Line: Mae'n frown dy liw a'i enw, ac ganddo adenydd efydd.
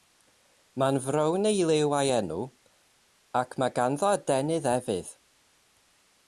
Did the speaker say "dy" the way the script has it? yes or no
no